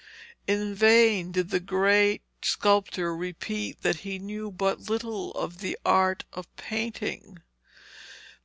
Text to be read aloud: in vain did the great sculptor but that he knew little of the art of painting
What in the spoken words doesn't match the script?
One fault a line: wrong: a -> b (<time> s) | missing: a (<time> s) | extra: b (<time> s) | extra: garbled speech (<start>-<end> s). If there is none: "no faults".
wrong: but -> repeat (3.1 s)
extra: but (4.5 s)